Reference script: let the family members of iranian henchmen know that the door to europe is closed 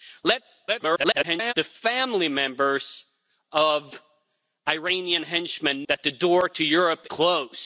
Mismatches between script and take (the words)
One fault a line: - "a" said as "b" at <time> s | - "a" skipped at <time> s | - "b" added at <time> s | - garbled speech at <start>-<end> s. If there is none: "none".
- garbled speech at 0.7-1.5 s
- "know" skipped at 5.8 s
- "is" skipped at 7.1 s